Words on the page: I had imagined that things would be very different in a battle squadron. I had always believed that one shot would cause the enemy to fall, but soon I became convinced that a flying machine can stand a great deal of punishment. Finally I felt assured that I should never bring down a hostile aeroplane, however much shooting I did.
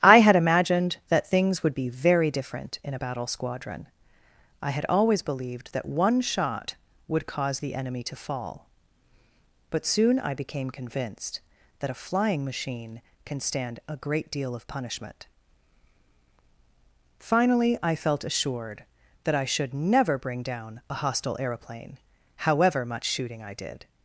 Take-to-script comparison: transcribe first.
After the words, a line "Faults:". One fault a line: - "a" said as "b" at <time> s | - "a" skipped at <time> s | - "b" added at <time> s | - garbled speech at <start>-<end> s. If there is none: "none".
I had imagined that things would be very different in a battle squadron. I had always believed that one shot would cause the enemy to fall, but soon I became convinced that a flying machine can stand a great deal of punishment. Finally I felt assured that I should never bring down a hostile aeroplane, however much shooting I did.
Faults:
none